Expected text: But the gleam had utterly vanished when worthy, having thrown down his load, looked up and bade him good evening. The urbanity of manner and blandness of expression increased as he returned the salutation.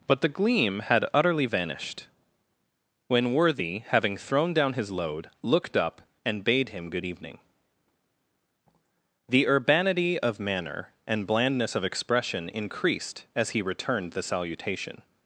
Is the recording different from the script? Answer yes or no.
no